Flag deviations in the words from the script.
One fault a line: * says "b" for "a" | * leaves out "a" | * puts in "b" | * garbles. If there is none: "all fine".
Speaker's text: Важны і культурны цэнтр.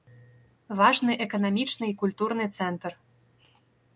* puts in "эканамічны"